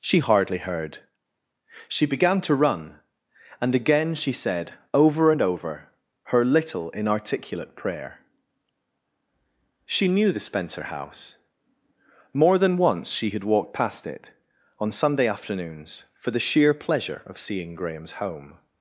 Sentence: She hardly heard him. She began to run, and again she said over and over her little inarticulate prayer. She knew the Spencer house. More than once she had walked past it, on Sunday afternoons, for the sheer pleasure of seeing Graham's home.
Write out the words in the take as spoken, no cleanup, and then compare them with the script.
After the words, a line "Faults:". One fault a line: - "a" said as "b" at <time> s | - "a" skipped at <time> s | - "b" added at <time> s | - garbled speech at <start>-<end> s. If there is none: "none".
She hardly heard. She began to run, and again she said over and over her little inarticulate prayer. She knew the Spencer house. More than once she had walked past it, on Sunday afternoons, for the sheer pleasure of seeing Graham's home.
Faults:
- "him" skipped at 1.0 s